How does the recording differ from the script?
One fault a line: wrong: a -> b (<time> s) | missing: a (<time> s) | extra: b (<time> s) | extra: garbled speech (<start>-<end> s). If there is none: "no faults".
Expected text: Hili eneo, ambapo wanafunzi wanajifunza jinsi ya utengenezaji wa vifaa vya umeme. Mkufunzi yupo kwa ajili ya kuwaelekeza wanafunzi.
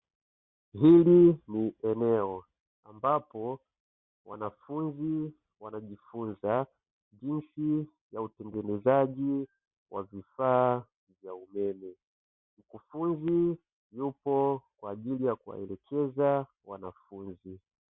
extra: ni (1.5 s)